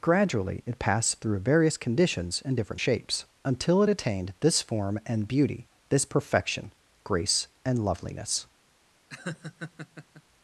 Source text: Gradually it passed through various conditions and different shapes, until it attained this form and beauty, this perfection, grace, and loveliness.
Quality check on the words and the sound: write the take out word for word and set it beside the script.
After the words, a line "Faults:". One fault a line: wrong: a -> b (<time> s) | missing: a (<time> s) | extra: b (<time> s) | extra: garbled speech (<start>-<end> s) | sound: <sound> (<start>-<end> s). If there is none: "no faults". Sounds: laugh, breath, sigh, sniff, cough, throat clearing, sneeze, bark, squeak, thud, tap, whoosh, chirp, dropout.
Gradually it passed through various conditions and different shapes, until it attained this form and beauty, this perfection, grace, and loveliness.
Faults:
sound: laugh (9.1-10.2 s)